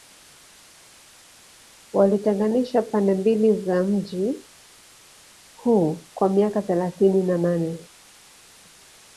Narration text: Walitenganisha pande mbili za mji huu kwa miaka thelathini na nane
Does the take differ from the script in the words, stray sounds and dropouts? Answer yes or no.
no